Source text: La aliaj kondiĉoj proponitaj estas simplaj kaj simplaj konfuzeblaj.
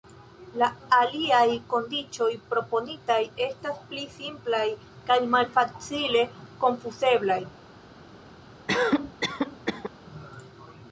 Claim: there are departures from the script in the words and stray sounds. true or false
true